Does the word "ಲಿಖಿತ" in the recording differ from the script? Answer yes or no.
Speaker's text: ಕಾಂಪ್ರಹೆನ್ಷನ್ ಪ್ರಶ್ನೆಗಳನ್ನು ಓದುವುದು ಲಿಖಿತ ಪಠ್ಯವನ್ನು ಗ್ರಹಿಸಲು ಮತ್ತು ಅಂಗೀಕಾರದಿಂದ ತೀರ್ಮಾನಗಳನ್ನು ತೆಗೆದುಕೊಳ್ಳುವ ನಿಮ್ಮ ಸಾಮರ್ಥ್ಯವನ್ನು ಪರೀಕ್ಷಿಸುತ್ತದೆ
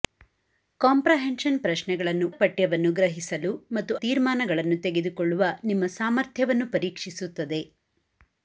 yes